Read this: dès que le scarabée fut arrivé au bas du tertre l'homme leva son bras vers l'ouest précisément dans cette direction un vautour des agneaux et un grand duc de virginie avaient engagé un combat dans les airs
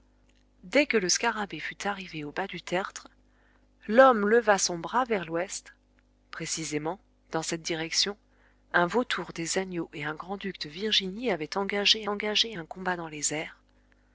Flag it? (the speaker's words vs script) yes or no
yes